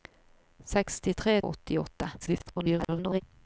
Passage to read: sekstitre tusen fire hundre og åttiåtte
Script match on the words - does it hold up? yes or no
no